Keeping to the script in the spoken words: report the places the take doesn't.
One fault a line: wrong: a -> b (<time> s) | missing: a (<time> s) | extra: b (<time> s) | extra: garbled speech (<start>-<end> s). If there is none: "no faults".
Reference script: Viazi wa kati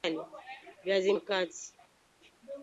no faults